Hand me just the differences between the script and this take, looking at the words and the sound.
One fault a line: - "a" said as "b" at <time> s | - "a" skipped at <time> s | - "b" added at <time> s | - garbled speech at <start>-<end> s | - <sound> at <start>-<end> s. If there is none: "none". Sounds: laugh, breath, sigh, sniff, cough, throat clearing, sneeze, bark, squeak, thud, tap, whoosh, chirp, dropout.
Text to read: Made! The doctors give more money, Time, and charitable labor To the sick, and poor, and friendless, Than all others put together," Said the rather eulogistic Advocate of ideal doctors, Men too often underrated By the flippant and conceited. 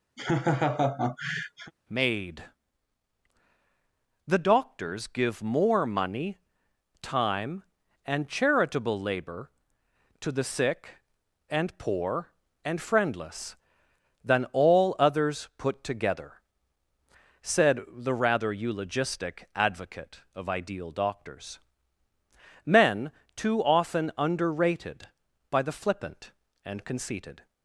- laugh at 0.2-1.7 s